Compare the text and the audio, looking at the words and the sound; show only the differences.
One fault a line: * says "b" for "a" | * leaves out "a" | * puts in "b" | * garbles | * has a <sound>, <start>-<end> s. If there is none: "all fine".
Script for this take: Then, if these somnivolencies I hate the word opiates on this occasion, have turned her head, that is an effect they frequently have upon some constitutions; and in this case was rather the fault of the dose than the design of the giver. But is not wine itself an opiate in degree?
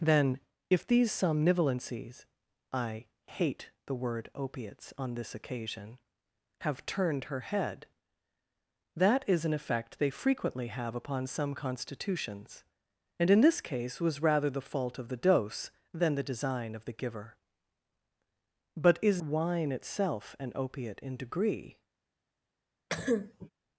* leaves out "not"
* has a cough, 22.9-23.5 s